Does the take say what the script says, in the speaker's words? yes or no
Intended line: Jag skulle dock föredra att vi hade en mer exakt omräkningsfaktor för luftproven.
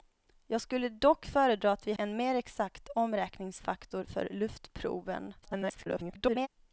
no